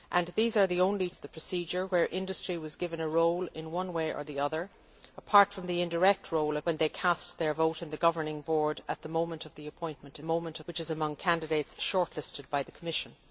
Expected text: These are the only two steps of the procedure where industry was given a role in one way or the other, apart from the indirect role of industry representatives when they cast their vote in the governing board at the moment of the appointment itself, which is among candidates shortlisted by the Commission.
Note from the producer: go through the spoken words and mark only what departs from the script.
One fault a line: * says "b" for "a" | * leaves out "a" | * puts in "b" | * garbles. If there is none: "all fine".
* leaves out "two steps"
* leaves out "of industry representatives"
* says "moment" for "itself"